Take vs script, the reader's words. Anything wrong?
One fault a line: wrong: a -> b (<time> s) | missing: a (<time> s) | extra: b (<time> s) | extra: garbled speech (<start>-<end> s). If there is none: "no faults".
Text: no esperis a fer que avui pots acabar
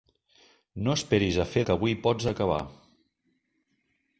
no faults